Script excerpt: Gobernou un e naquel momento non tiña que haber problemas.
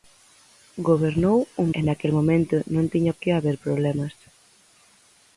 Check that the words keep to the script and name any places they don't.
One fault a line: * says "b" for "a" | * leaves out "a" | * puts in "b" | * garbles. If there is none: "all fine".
all fine